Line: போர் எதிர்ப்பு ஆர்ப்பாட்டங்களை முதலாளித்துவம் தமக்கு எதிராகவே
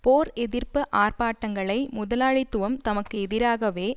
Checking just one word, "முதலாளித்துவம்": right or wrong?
right